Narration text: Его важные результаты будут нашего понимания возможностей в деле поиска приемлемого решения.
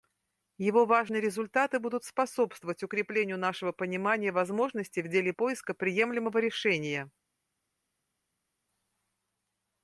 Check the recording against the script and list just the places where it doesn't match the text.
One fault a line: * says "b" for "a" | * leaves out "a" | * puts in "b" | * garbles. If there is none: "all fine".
* puts in "способствовать укреплению"